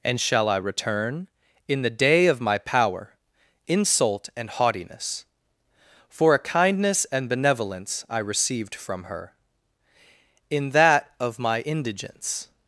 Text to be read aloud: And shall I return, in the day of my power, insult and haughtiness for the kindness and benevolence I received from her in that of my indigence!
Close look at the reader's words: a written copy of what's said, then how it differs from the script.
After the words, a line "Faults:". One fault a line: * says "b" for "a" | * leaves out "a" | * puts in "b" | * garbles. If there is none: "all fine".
And shall I return, in the day of my power, insult and haughtiness for a kindness and benevolence I received from her in that of my indigence!
Faults:
* says "a" for "the"